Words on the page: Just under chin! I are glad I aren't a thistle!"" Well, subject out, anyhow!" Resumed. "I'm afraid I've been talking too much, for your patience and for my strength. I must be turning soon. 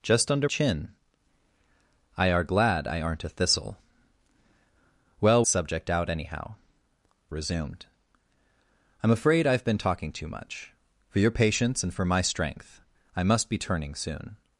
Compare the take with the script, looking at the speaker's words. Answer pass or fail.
pass